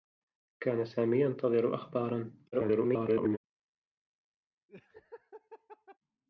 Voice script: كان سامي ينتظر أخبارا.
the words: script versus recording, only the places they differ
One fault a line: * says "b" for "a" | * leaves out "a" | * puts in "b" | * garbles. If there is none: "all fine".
* garbles